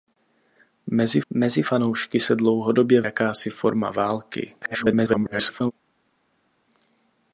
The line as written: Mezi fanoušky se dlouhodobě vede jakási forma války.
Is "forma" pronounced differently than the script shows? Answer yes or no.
no